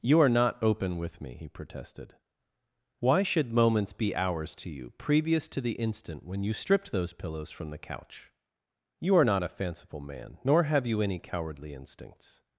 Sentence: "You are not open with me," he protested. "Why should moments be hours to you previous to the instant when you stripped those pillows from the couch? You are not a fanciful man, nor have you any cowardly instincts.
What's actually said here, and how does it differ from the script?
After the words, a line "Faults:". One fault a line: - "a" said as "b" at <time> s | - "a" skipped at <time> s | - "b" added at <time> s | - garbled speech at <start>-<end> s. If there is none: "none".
"You are not open with me," he protested. "Why should moments be hours to you previous to the instant when you stripped those pillows from the couch? You are not a fanciful man, nor have you any cowardly instincts.
Faults:
none